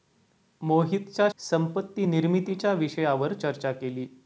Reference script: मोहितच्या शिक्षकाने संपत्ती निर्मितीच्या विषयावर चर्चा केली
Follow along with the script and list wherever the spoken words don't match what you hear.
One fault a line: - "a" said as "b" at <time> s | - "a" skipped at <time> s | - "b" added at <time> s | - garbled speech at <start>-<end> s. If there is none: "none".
- "शिक्षकाने" skipped at 1.3 s